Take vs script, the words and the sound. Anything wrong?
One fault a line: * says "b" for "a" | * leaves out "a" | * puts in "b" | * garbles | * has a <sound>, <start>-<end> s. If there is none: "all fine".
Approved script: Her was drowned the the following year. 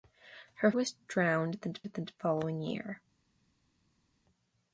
all fine